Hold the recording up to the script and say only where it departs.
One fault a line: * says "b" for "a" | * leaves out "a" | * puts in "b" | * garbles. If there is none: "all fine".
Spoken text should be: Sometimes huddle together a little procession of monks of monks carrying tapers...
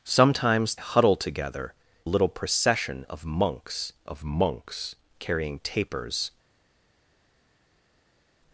all fine